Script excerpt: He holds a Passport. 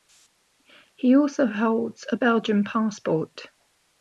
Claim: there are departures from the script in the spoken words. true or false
true